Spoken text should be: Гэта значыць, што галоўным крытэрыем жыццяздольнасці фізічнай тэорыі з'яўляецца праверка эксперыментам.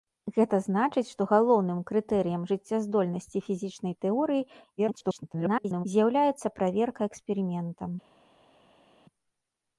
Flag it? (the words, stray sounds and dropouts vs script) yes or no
yes